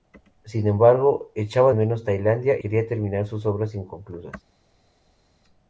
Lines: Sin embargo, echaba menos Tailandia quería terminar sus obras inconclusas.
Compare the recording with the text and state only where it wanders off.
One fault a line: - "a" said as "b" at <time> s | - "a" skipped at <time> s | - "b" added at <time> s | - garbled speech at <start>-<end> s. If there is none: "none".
none